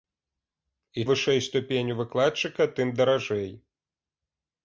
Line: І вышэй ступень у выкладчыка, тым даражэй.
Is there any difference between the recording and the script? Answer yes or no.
no